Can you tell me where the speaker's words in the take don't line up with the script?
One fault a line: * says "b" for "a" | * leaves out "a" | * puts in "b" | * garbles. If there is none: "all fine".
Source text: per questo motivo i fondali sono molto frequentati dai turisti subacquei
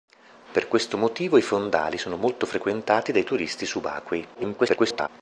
* garbles